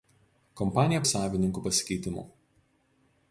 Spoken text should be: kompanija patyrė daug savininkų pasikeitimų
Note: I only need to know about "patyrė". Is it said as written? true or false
false